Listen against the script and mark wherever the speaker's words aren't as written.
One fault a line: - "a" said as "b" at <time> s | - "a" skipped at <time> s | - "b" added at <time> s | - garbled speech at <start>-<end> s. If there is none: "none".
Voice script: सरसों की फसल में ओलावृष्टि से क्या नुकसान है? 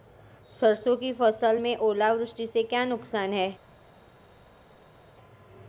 none